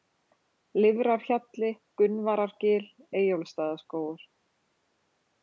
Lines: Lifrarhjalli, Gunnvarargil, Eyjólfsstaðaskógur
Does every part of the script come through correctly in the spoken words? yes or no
yes